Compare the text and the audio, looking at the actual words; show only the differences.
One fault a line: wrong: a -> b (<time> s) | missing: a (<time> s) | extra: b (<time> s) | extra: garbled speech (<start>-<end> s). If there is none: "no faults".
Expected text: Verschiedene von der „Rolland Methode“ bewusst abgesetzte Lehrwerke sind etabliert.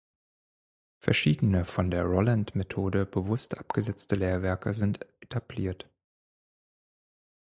no faults